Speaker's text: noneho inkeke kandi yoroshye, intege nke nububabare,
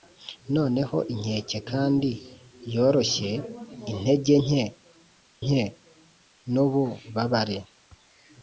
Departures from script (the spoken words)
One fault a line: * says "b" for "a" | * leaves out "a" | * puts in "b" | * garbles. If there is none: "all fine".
* puts in "nke"